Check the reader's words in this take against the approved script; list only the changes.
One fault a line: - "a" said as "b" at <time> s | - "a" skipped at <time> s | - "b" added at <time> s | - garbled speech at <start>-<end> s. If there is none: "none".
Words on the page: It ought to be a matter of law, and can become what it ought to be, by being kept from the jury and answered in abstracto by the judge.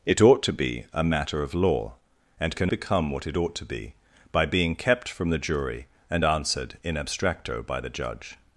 none